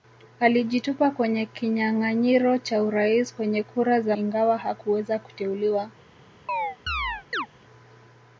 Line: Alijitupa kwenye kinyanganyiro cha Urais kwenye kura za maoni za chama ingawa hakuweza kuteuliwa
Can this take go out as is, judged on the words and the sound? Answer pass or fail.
fail